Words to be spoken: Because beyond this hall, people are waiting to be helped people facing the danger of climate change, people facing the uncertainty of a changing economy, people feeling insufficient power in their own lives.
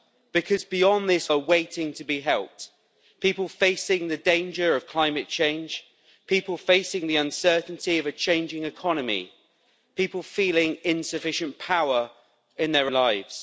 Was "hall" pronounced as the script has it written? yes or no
no